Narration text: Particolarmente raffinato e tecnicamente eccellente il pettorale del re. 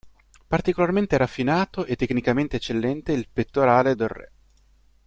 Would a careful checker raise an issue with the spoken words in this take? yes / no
no